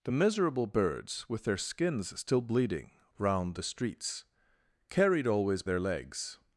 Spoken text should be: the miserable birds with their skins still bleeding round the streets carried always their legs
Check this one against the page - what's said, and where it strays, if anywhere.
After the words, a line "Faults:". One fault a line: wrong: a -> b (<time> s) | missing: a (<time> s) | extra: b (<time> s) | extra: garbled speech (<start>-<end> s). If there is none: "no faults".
the miserable birds with their skins still bleeding round the streets carried always their legs
Faults:
no faults